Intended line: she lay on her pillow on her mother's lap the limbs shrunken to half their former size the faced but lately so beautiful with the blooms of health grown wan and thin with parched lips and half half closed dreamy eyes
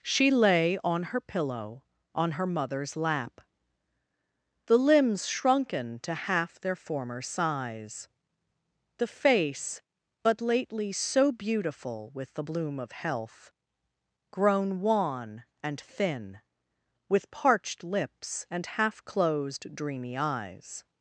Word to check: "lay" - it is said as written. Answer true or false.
true